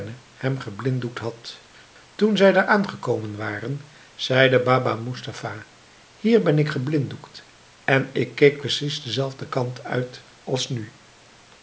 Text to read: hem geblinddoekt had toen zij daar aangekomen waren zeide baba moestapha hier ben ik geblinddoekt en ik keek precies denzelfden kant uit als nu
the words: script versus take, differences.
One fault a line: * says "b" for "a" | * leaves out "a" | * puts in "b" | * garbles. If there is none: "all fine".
all fine